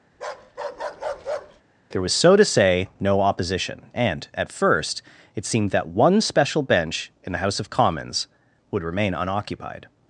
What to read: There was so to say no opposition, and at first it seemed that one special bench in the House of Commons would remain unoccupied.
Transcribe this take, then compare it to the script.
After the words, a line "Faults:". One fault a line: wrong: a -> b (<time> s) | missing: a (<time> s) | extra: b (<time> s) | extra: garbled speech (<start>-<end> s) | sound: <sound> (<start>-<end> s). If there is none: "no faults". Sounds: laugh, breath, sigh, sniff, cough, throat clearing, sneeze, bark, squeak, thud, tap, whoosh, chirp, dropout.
There was so to say no opposition, and at first it seemed that one special bench in the House of Commons would remain unoccupied.
Faults:
sound: bark (0.1-1.6 s)